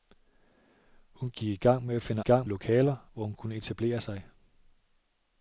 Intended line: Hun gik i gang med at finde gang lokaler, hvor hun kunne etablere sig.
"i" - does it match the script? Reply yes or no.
yes